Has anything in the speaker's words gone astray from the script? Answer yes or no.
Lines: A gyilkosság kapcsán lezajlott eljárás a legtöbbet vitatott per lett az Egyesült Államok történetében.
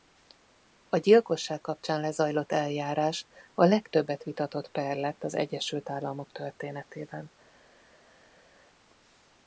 no